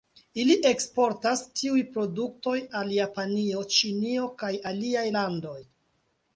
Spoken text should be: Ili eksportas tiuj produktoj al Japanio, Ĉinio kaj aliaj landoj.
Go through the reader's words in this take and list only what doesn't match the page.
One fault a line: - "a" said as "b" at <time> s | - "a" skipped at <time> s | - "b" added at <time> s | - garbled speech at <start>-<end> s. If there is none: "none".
none